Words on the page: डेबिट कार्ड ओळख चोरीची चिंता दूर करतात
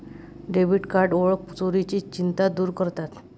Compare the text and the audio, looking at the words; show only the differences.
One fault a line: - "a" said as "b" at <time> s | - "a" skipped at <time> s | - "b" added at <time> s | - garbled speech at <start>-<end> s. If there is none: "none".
none